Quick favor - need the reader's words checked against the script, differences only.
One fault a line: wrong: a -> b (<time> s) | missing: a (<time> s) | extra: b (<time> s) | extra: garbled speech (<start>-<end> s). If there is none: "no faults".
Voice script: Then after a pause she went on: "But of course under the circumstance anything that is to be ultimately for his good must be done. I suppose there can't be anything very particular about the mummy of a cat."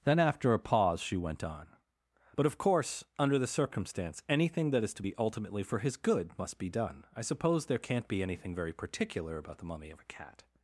no faults